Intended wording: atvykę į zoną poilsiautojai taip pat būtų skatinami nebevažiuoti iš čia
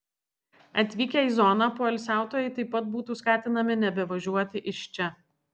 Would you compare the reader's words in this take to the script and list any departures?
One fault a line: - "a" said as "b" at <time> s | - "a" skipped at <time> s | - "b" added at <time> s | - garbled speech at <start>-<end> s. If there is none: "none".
none